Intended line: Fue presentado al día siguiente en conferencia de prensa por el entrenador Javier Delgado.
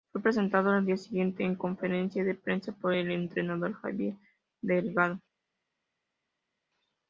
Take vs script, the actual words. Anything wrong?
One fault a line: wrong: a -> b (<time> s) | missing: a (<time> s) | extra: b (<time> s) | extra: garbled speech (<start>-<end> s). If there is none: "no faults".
no faults